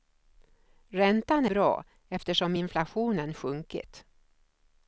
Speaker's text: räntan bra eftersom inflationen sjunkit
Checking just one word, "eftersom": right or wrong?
right